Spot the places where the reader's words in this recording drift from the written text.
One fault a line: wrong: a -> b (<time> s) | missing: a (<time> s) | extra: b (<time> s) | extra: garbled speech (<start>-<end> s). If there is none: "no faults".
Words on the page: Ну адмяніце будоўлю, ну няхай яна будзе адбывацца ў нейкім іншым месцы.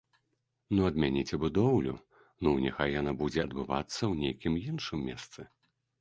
no faults